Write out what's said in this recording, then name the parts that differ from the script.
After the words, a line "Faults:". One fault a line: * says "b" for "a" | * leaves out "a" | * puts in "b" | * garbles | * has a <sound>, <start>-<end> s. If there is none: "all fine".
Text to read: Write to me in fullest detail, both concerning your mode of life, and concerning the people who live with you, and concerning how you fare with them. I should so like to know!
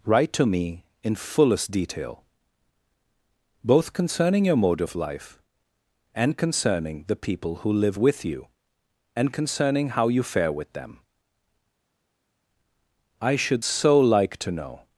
Write to me in fullest detail, both concerning your mode of life, and concerning the people who live with you, and concerning how you fare with them. I should so like to know!
Faults:
all fine